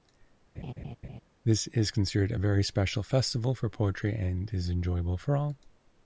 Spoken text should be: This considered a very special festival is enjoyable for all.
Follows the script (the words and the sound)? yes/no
no